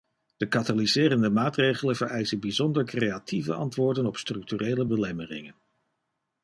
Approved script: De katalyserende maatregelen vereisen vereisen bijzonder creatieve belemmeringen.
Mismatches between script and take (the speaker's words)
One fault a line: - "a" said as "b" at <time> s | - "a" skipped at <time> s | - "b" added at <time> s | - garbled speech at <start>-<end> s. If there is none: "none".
- "vereisen" skipped at 2.4 s
- "antwoorden op structurele" added at 3.5 s